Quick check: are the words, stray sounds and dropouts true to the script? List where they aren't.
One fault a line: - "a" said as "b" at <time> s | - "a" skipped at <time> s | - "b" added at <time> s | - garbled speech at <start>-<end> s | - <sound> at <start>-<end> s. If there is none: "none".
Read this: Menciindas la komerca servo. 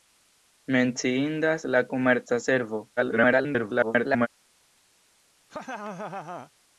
- garbled speech at 3.0-4.3 s
- laugh at 5.5-6.5 s